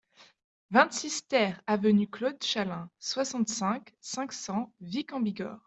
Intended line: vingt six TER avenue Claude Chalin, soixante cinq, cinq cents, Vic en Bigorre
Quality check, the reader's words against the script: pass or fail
pass